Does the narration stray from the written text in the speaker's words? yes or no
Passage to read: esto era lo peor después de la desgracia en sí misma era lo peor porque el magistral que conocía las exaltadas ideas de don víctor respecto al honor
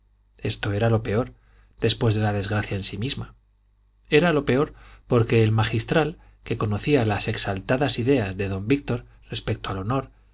no